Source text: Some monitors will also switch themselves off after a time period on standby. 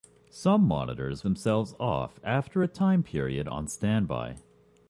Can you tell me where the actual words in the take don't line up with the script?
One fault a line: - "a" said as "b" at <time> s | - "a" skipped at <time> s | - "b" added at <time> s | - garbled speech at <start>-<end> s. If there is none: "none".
- "will also switch" skipped at 1.2 s